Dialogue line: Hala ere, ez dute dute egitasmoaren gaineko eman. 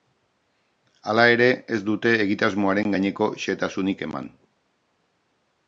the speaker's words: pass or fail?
fail